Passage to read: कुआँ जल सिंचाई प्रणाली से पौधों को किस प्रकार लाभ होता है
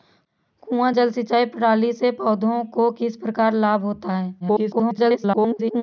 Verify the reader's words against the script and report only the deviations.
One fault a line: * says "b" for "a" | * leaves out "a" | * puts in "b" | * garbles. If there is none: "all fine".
* garbles